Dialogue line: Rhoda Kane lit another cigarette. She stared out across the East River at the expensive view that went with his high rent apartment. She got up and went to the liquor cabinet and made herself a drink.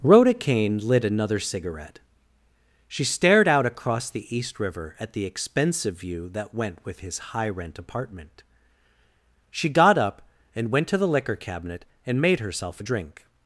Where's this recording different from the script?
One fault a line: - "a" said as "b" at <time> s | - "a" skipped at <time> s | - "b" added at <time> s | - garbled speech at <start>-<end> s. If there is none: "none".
none